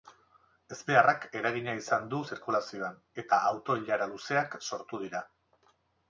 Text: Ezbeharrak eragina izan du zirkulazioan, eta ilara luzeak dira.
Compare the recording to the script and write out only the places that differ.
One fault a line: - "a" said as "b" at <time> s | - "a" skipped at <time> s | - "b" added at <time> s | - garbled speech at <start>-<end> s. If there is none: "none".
- "auto" added at 3.5 s
- "sortu" added at 4.7 s